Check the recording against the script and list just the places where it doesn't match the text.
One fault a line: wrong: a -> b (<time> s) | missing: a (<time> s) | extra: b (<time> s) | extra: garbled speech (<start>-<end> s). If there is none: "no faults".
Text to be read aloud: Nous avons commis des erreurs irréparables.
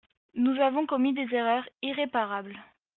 no faults